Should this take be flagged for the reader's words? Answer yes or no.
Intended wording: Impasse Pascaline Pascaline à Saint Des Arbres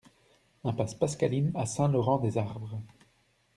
yes